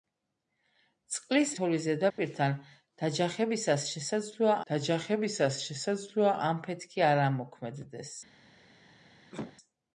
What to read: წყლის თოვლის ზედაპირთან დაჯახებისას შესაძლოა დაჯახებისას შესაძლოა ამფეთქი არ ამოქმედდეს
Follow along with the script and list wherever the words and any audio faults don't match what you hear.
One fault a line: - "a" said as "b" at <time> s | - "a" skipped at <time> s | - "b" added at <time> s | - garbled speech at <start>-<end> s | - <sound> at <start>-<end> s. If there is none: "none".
- dropout at 2.1-2.2 s
- cough at 9.3-9.6 s